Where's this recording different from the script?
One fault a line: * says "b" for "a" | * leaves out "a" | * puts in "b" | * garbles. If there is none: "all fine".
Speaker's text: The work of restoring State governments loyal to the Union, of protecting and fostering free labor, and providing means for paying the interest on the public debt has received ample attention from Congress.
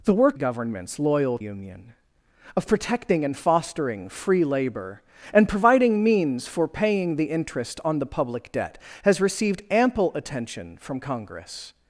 * leaves out "of restoring State"
* leaves out "to the"